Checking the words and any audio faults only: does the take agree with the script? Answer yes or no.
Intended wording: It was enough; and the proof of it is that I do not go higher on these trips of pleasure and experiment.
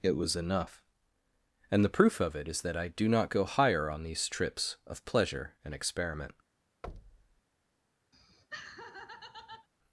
no